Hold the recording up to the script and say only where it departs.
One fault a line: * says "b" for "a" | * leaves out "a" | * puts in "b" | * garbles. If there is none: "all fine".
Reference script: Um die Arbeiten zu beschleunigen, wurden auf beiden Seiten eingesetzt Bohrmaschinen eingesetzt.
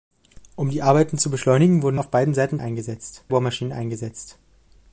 all fine